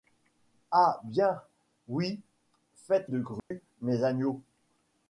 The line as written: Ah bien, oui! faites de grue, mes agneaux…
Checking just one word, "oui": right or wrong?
right